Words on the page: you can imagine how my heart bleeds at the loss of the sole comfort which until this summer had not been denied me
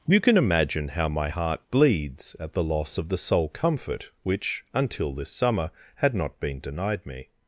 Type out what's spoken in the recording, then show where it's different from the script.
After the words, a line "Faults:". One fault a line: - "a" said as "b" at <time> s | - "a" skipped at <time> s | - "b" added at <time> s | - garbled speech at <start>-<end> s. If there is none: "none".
you can imagine how my heart bleeds at the loss of the sole comfort which until this summer had not been denied me
Faults:
none